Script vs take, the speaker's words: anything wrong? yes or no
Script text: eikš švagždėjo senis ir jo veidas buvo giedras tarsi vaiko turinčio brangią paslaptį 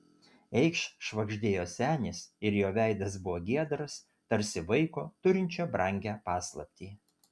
no